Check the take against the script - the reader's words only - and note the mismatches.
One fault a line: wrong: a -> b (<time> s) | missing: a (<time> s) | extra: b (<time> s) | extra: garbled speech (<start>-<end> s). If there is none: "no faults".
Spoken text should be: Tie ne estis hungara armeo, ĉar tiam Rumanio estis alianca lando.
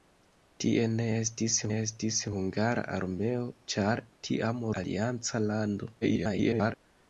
extra: estis (1.8 s)
missing: Rumanio estis (4.6 s)
extra: garbled speech (6.0-6.8 s)